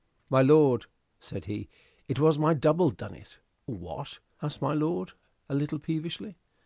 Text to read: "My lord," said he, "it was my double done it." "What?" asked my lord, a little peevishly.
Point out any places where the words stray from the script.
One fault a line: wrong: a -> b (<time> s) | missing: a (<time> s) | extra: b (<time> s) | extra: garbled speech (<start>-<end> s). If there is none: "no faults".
no faults